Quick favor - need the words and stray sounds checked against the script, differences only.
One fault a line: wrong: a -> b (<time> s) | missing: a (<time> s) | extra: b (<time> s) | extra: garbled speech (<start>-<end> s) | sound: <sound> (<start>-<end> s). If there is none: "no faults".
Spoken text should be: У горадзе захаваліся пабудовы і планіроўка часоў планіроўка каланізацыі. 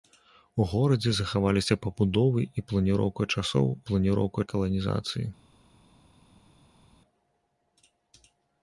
no faults